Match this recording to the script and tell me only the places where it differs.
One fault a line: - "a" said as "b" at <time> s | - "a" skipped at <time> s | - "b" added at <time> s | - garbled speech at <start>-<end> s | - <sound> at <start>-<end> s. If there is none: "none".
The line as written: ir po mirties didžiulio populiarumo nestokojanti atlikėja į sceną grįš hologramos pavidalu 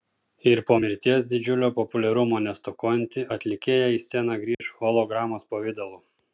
- dropout at 4.5-4.6 s